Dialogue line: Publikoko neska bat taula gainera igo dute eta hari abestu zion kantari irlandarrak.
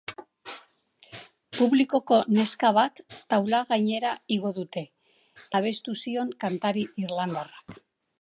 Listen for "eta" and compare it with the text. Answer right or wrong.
wrong